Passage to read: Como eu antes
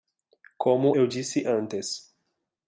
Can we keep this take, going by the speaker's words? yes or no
no